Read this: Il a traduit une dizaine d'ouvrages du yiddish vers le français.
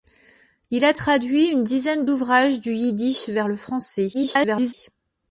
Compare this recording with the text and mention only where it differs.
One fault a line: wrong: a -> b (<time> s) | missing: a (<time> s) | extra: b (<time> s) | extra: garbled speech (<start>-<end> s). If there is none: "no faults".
extra: garbled speech (4.1-4.7 s)